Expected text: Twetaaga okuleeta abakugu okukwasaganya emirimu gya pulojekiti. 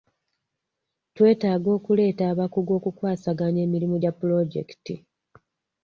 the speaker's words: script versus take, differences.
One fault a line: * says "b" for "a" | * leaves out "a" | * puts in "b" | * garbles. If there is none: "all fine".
all fine